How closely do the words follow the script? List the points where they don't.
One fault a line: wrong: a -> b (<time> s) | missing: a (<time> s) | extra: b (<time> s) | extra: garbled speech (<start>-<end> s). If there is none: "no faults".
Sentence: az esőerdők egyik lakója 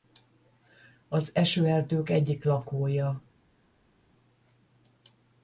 no faults